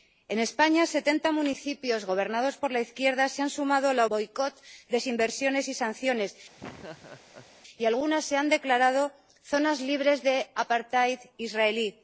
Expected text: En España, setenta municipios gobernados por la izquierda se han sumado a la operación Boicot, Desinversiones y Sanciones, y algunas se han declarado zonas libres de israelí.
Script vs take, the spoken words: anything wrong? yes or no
yes